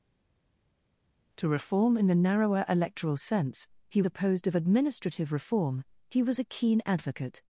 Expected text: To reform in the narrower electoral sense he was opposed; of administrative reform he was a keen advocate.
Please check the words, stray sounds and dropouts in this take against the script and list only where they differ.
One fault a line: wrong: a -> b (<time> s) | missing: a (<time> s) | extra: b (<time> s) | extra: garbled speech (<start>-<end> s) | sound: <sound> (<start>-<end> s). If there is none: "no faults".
missing: was (4.0 s)